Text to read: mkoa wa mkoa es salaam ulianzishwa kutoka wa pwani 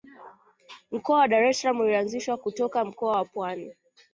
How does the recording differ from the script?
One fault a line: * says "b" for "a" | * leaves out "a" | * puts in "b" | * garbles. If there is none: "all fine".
* says "dar" for "mkoa"
* puts in "mkoa"